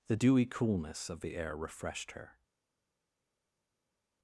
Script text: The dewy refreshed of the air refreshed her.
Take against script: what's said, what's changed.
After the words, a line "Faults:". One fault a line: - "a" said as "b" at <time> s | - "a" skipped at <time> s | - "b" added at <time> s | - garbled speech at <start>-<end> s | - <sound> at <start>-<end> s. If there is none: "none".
The dewy coolness of the air refreshed her.
Faults:
- "refreshed" said as "coolness" at 0.4 s